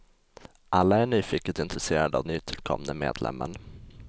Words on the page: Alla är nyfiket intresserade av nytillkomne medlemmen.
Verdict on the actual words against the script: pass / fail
pass